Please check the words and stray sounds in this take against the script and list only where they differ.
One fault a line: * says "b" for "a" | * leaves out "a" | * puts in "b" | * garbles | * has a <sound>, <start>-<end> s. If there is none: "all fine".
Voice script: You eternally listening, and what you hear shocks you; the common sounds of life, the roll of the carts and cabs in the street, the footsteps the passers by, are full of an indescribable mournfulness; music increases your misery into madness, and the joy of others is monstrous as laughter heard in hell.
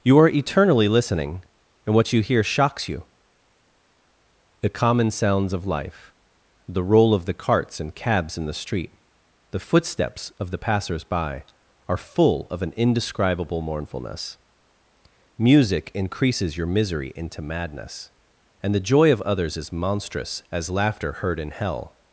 * puts in "are"
* puts in "of"